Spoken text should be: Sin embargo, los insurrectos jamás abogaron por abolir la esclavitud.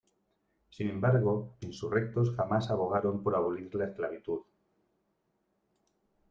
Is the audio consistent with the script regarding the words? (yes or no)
no